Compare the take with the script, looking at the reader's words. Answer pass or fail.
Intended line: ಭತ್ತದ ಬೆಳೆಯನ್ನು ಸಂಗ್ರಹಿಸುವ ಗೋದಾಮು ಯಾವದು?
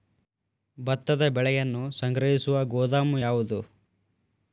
pass